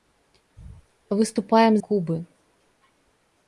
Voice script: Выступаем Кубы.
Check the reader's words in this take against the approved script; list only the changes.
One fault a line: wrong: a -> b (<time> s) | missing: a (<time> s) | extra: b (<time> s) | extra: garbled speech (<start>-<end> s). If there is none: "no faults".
no faults